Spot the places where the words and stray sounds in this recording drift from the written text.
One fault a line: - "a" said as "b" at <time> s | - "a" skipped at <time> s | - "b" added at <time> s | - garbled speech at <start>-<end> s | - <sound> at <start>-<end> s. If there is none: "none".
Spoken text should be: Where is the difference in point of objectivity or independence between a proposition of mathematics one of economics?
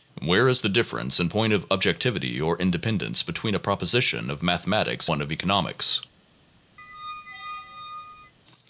- squeak at 6.8-8.3 s